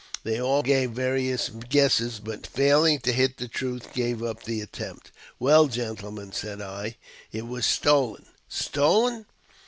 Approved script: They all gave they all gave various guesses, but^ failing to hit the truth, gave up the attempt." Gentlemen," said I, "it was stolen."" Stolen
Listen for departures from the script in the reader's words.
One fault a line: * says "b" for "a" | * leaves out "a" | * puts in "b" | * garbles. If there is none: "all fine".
* leaves out "they all gave"
* puts in "Well"